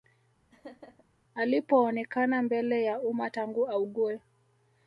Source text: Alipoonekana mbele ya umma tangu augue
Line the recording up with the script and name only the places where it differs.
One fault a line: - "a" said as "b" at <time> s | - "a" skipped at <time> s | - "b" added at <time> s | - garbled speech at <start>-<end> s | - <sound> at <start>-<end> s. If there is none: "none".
- laugh at 0.5-1.0 s